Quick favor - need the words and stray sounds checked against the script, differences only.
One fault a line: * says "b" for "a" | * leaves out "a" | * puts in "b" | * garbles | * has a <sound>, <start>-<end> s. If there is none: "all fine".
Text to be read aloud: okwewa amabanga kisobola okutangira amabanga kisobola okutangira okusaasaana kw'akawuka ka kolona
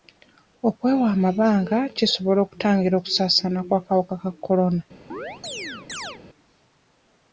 * leaves out "amabanga kisobola okutangira"
* has a chirp, 5.1-6.2 s